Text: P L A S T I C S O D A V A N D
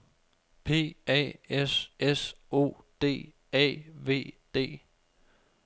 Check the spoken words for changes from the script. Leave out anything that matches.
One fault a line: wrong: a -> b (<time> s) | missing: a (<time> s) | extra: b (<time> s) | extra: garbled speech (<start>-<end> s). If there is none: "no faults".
missing: L (0.9 s)
missing: T I C (1.9 s)
missing: A N (4.4 s)